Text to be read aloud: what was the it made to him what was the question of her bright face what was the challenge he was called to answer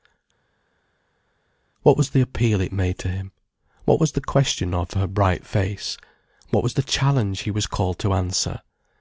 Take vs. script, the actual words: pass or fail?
fail